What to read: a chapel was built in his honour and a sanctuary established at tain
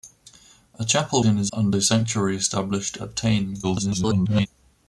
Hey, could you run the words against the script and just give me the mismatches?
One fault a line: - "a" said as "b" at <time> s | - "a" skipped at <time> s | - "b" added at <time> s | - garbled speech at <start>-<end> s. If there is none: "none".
- "was built" skipped at 1.2 s
- "honour" skipped at 1.5 s
- garbled speech at 3.6-4.5 s